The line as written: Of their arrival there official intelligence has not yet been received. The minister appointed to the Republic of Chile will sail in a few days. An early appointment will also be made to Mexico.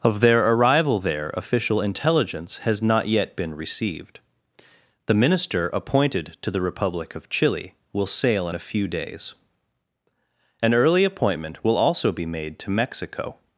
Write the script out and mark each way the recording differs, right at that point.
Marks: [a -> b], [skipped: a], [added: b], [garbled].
Of their arrival there official intelligence has not yet been received. The minister appointed to the Republic of Chile will sail in a few days. An early appointment will also be made to Mexico.